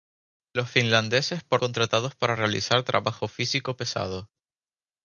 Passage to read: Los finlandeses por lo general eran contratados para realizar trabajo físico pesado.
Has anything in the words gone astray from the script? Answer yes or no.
yes